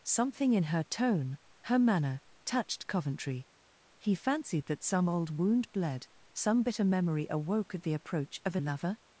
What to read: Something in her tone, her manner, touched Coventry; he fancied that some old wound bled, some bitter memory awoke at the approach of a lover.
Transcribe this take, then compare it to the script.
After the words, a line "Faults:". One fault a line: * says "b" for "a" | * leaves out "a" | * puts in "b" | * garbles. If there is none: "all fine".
Something in her tone, her manner, touched Coventry; he fancied that some old wound bled, some bitter memory awoke at the approach of a lover.
Faults:
all fine